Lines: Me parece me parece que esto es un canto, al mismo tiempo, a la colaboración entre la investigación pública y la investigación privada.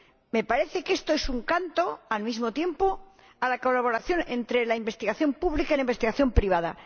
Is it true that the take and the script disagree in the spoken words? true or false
true